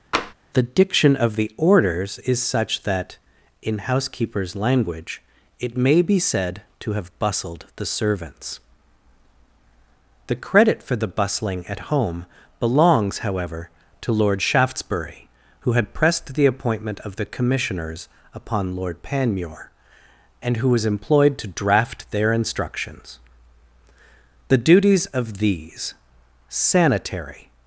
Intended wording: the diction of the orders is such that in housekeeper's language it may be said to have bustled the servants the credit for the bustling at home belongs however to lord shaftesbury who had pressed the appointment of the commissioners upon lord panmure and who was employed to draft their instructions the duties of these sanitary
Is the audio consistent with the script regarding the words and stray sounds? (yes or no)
no